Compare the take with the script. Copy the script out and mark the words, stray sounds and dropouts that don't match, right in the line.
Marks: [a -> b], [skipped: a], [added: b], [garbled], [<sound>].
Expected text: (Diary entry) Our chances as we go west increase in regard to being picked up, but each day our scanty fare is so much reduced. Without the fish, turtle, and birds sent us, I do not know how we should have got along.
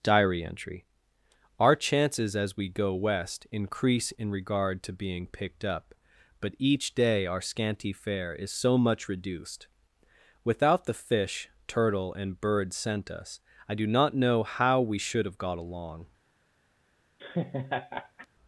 (Diary entry) Our chances as we go west increase in regard to being picked up, but each day our scanty fare is so much reduced. Without the fish, turtle, and birds sent us, I do not know how we should have got along. [laugh]